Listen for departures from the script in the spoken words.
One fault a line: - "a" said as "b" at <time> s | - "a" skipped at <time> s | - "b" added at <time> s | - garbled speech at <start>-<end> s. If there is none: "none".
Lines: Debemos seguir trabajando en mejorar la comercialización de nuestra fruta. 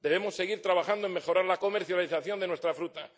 none